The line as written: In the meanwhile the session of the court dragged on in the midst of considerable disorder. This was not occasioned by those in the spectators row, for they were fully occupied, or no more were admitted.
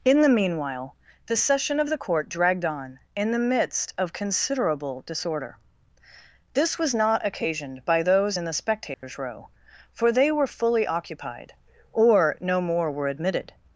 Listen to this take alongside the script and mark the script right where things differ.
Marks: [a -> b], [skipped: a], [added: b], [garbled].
In the meanwhile the session of the court dragged on in the midst of considerable disorder. This was not occasioned by those in the spectators row, for they were fully occupied, or no more were admitted.